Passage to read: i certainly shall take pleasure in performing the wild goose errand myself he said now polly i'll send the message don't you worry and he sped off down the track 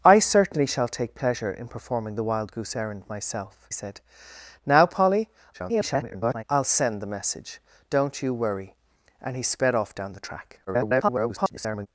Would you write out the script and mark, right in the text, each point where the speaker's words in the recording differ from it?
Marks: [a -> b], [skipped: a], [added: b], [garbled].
i certainly shall take pleasure in performing the wild goose errand myself [skipped: he] said now polly [garbled] i'll send the message don't you worry and he sped off down the track [garbled]